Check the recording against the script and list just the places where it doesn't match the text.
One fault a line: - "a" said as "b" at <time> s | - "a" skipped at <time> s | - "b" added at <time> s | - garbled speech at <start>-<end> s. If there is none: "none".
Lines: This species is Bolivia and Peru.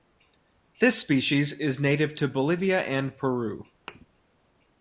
- "native to" added at 1.8 s